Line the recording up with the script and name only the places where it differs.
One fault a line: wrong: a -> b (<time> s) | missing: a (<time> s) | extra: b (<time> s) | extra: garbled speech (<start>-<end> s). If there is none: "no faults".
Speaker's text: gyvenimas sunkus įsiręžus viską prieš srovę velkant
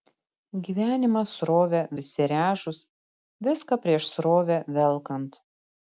wrong: sunkus -> srovę (1.4 s)